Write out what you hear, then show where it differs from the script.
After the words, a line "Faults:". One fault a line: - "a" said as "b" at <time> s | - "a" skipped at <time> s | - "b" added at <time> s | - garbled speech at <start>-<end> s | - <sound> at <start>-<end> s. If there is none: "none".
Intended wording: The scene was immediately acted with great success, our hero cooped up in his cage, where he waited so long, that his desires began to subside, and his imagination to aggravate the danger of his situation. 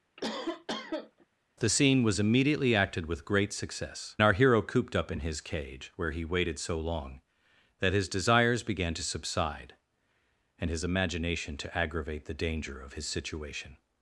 The scene was immediately acted with great success, our hero cooped up in his cage, where he waited so long, that his desires began to subside, and his imagination to aggravate the danger of his situation.
Faults:
- cough at 0.2-1.3 s